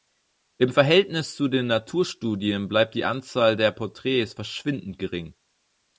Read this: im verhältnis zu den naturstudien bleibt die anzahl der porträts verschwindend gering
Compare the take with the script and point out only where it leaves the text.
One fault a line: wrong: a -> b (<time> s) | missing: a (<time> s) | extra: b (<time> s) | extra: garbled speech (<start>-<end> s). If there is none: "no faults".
no faults